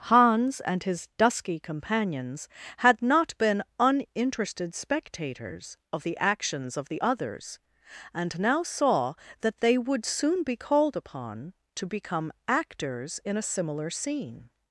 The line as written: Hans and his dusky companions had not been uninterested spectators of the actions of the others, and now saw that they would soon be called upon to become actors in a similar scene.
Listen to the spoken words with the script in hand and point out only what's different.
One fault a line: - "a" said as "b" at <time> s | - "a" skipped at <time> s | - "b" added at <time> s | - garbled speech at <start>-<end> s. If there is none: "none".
none